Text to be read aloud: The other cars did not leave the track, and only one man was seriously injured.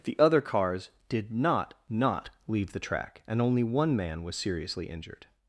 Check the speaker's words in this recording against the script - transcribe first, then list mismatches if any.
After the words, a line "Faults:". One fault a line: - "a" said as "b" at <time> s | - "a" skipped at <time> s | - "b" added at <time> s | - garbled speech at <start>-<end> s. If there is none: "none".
The other cars did not not leave the track, and only one man was seriously injured.
Faults:
- "not" added at 1.9 s